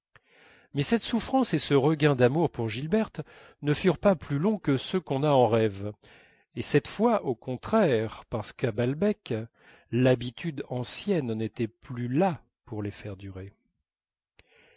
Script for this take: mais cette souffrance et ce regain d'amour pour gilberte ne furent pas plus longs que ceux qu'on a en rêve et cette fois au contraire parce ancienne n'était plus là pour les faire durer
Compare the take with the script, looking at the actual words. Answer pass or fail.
fail